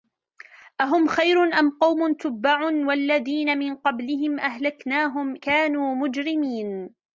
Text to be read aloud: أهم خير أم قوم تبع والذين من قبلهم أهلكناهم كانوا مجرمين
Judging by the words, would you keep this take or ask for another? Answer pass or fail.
pass